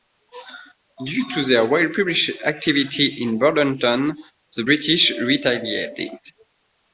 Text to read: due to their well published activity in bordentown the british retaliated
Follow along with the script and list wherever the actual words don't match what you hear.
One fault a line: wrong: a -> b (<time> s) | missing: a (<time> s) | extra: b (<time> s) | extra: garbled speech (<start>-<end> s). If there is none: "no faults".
no faults